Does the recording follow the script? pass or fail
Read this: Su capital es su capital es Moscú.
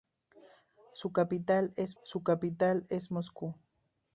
pass